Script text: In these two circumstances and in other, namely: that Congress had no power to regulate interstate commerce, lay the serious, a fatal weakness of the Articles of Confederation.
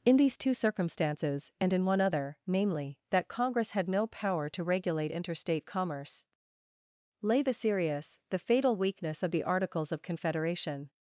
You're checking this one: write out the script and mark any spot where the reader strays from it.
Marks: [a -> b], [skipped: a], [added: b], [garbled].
In these two circumstances and in [added: one] other, namely: that Congress had no power to regulate interstate commerce, lay the serious, [a -> the] fatal weakness of the Articles of Confederation.